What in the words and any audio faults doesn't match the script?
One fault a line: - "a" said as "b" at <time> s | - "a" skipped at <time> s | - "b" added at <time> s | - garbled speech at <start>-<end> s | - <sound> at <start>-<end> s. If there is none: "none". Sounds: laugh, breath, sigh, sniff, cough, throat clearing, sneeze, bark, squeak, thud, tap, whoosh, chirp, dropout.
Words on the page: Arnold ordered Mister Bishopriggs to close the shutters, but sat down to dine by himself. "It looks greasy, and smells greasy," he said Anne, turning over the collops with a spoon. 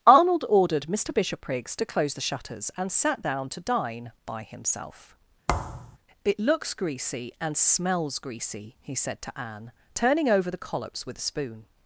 - "but" said as "and" at 2.8 s
- thud at 5.5-6.0 s
- "to" added at 9.2 s